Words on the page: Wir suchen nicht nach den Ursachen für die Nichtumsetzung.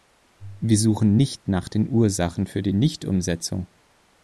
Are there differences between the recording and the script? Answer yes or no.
no